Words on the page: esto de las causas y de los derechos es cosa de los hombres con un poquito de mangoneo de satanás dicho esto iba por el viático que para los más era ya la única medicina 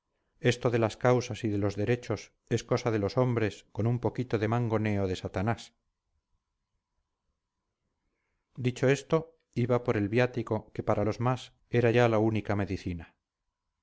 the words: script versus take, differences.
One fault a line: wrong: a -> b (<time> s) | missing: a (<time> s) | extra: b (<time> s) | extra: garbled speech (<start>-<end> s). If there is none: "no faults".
no faults